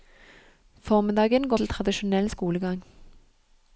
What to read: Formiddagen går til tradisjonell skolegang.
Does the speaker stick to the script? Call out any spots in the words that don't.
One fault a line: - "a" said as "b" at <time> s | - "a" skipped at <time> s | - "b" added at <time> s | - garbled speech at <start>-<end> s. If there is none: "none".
none